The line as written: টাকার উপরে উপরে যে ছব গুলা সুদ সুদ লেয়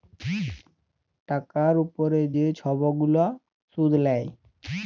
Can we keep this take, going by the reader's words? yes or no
no